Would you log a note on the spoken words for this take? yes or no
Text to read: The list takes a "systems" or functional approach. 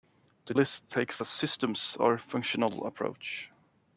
no